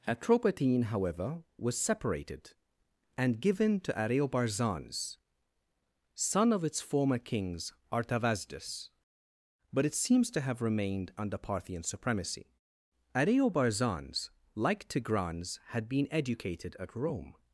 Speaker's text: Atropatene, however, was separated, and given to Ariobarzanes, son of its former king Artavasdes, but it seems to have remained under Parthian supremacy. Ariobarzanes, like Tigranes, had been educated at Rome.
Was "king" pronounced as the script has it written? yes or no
no